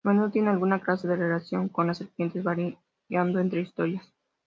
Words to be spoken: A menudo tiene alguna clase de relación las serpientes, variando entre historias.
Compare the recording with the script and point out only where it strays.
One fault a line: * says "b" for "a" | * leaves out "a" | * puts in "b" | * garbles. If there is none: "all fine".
* puts in "con"